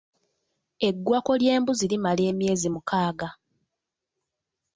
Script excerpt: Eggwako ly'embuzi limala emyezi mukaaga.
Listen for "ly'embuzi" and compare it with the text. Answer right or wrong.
right